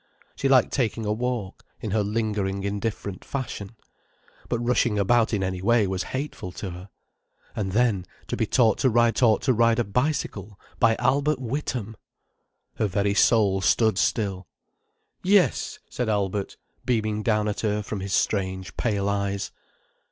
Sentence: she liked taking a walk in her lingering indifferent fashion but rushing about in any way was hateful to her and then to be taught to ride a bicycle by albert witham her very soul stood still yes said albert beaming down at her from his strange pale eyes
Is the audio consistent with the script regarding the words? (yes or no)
no